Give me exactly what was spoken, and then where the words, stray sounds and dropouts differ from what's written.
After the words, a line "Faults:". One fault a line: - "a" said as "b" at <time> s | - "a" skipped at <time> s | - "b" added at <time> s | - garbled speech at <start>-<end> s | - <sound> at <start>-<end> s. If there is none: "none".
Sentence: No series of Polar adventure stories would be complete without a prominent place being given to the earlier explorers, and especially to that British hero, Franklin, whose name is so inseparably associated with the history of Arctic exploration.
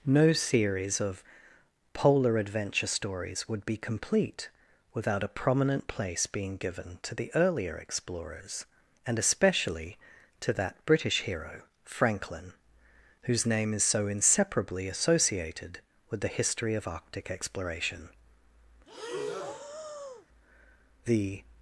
No series of Polar adventure stories would be complete without a prominent place being given to the earlier explorers, and especially to that British hero, Franklin, whose name is so inseparably associated with the history of Arctic exploration. The
Faults:
- breath at 18.9-20.3 s
- "The" added at 21.1 s